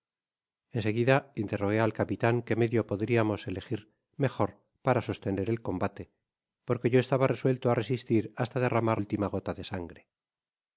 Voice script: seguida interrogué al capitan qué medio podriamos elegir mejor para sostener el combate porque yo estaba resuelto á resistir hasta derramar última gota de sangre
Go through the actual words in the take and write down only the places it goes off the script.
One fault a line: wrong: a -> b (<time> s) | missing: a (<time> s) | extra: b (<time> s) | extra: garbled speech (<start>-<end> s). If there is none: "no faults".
no faults